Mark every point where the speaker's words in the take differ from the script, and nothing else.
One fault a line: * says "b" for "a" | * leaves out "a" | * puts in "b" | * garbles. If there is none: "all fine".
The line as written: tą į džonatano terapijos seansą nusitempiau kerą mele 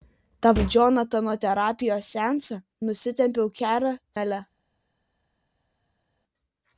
all fine